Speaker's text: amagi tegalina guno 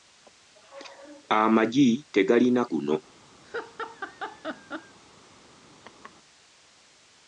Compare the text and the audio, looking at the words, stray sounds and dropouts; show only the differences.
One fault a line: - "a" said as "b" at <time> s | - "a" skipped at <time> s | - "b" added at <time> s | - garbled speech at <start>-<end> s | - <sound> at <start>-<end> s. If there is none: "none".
- laugh at 3.4-5.0 s
- laugh at 5.8-6.1 s